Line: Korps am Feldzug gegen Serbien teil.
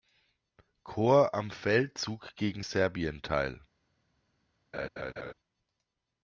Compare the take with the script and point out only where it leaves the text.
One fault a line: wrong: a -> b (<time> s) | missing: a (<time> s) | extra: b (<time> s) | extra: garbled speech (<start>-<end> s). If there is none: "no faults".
no faults